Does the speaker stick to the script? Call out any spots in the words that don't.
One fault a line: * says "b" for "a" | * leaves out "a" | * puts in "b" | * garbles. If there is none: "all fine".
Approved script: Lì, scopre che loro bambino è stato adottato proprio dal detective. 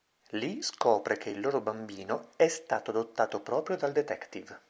* puts in "il"